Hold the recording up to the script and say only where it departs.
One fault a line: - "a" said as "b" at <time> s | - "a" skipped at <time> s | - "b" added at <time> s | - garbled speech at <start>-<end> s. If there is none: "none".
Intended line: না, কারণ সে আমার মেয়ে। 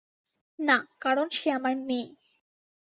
none